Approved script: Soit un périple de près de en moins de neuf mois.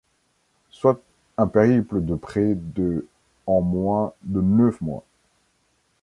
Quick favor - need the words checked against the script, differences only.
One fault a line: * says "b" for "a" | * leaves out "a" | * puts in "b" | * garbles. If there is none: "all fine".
all fine